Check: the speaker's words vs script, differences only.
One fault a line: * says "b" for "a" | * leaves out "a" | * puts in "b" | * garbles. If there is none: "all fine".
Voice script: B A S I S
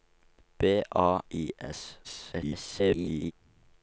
* leaves out "S"
* garbles